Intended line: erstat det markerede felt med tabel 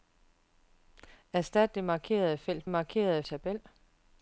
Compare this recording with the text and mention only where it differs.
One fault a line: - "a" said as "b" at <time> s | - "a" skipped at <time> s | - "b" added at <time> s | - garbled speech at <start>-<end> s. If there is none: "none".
- "med" said as "markerede" at 2.7 s